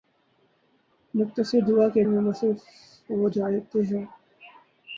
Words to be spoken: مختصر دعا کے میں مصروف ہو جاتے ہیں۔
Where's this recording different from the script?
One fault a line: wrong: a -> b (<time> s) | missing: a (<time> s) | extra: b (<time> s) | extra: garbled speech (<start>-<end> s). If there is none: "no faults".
no faults